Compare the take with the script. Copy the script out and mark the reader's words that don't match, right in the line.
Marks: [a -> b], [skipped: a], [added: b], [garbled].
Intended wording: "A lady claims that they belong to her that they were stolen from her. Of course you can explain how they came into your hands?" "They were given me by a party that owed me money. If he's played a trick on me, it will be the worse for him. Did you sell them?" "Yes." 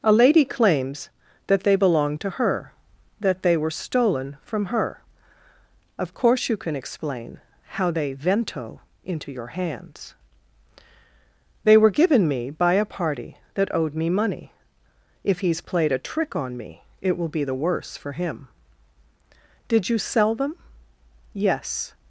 "A lady claims that they belong to her that they were stolen from her. Of course you can explain how they [came -> vento] into your hands?" "They were given me by a party that owed me money. If he's played a trick on me, it will be the worse for him. Did you sell them?" "Yes."